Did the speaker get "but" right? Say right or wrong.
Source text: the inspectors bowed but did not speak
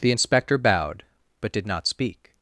right